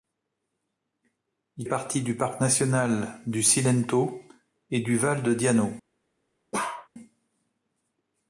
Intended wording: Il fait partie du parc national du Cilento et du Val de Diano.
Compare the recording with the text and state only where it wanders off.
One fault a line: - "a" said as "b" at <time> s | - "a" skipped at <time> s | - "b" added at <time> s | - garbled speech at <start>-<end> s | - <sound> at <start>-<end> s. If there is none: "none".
- "fait" skipped at 1.7 s
- bark at 6.5-6.9 s